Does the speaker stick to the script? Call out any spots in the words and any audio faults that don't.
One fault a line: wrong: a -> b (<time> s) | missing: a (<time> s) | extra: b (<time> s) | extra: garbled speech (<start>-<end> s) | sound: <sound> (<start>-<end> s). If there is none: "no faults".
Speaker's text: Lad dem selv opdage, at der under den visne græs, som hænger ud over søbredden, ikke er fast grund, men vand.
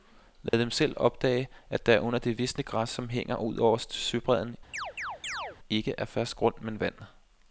sound: dropout (0.5-0.5 s)
wrong: den -> det (2.2 s)
sound: chirp (4.7-5.6 s)